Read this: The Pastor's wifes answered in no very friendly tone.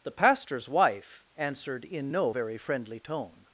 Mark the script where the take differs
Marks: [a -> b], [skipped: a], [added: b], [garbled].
The Pastor's [wifes -> wife] answered in no very friendly tone.